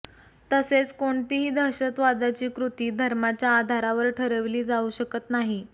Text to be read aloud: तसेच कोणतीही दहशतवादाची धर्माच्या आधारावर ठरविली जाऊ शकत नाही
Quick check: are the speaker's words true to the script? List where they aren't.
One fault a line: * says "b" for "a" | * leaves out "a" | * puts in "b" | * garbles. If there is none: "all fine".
* puts in "कृती"